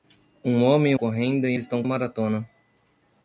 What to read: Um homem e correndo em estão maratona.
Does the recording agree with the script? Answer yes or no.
yes